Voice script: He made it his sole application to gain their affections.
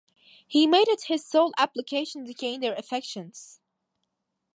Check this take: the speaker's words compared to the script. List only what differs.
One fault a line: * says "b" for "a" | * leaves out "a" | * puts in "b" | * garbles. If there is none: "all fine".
all fine